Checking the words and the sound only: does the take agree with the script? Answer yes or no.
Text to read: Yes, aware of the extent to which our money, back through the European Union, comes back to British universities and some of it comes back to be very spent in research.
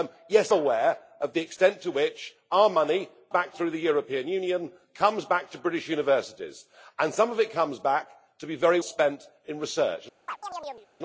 no